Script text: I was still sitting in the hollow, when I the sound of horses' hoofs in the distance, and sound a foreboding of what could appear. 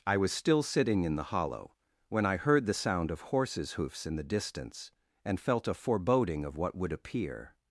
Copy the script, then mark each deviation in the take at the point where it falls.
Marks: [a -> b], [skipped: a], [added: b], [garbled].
I was still sitting in the hollow, when I [added: heard] the sound of horses' hoofs in the distance, and [sound -> felt] a foreboding of what [could -> would] appear.